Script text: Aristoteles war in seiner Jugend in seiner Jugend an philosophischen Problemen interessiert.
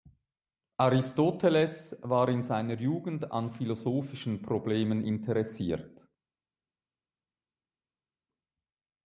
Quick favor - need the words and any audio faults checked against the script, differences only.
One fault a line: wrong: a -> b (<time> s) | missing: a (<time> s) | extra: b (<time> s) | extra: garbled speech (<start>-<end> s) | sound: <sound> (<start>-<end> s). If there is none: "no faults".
missing: in seiner Jugend (3.3 s)